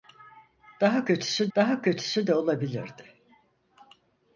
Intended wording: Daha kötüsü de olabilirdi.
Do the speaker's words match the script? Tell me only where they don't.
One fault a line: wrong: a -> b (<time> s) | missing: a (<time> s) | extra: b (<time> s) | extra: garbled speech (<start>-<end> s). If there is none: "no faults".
extra: daha kötüsü (1.6 s)